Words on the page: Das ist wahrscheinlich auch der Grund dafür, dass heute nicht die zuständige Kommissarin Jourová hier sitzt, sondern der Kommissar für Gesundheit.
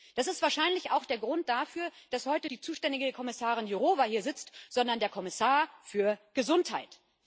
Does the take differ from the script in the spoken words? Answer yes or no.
yes